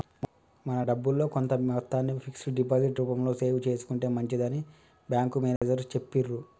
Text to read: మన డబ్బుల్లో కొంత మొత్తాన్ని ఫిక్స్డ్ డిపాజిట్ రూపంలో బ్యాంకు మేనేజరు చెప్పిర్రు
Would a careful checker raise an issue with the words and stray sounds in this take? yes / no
yes